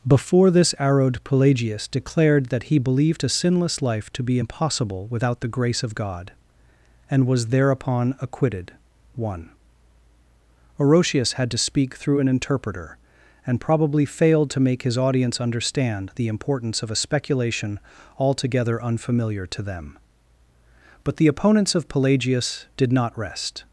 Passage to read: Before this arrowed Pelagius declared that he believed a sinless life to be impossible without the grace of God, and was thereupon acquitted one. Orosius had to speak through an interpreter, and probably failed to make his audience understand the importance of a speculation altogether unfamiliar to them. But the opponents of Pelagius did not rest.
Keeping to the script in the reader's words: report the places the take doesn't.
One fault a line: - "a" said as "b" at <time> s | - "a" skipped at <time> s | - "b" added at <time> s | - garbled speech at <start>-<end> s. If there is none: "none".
none